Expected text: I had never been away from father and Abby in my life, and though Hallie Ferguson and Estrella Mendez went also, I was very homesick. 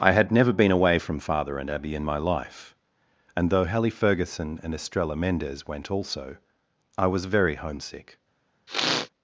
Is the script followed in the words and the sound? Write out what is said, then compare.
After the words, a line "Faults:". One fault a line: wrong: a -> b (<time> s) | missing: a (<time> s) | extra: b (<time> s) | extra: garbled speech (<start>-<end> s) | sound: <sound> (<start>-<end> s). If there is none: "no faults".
I had never been away from father and Abby in my life, and though Hallie Ferguson and Estrella Mendez went also, I was very homesick.
Faults:
sound: sneeze (8.7-9.1 s)